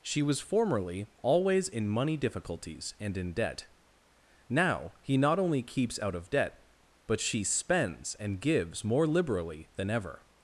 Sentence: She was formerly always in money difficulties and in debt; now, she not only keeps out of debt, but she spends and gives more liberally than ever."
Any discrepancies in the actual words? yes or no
yes